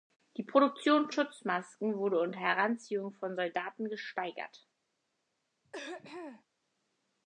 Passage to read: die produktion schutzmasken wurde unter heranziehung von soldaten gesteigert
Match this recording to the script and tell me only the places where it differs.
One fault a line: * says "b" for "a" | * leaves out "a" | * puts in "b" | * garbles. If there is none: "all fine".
all fine